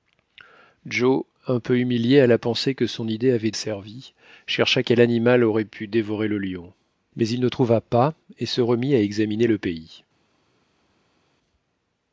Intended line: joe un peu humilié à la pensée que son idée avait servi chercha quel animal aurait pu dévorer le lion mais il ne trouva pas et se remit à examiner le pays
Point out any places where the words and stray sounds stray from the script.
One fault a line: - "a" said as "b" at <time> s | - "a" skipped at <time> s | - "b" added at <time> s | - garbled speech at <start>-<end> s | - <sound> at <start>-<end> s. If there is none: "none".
none